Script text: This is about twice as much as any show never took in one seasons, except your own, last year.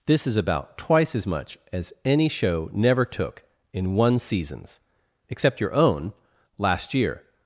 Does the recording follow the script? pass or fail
pass